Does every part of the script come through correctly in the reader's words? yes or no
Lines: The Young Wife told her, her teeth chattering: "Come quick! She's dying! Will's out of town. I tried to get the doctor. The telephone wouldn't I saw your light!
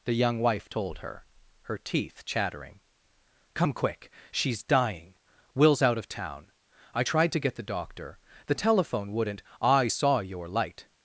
yes